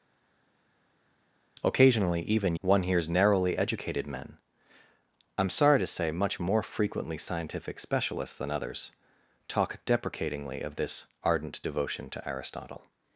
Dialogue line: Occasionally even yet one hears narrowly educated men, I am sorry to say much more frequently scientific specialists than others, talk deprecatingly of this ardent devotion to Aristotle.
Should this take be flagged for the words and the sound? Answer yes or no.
yes